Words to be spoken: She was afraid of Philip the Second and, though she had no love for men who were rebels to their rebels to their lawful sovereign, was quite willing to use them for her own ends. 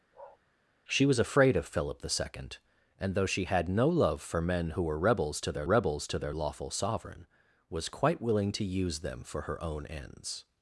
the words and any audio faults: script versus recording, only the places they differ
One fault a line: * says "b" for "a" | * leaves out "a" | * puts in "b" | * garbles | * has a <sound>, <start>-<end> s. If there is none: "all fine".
* has a bark, 0.1-0.4 s